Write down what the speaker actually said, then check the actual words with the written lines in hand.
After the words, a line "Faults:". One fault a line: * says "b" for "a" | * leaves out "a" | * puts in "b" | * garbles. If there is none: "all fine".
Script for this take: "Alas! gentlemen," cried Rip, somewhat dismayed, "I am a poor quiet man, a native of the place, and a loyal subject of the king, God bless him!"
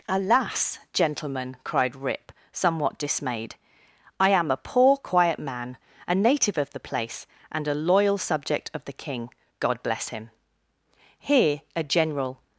"Alas! gentlemen," cried Rip, somewhat dismayed, "I am a poor quiet man, a native of the place, and a loyal subject of the king, God bless him!" Here a general
Faults:
* puts in "Here a general"